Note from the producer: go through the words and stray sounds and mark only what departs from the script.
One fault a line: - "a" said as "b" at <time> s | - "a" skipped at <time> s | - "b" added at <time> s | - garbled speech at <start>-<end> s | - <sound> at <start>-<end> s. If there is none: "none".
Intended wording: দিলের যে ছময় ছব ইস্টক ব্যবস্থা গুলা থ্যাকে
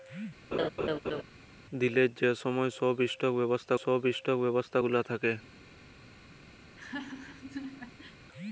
- laugh at 0.5-1.2 s
- "ছব ইস্টক ব্যবস্থা" added at 3.8 s
- laugh at 6.6-8.2 s